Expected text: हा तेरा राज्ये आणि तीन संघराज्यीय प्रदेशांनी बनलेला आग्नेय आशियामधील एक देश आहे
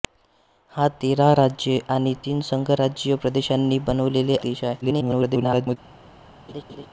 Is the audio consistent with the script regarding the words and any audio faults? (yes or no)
no